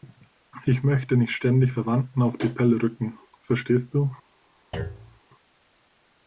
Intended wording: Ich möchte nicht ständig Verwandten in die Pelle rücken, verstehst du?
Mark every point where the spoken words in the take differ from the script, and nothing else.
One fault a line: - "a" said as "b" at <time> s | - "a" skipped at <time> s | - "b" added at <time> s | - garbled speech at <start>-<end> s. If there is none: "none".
- "in" said as "auf" at 2.2 s